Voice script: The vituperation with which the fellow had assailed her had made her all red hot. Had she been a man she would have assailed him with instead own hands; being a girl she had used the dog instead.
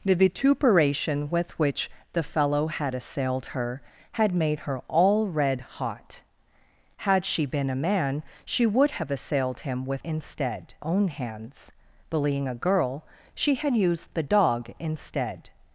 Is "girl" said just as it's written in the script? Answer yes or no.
yes